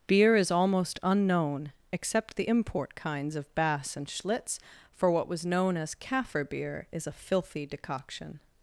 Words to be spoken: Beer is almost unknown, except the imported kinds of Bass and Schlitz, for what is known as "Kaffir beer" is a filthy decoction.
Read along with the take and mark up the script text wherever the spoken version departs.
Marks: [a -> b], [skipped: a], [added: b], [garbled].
Beer is almost unknown, except the [imported -> import] kinds of Bass and Schlitz, for what [is -> was] known as "Kaffir beer" is a filthy decoction.